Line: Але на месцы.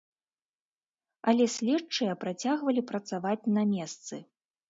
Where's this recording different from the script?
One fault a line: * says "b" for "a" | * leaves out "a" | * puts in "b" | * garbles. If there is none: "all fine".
* puts in "следчыя працягвалі працаваць"